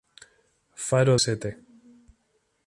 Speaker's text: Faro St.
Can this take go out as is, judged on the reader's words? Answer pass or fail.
pass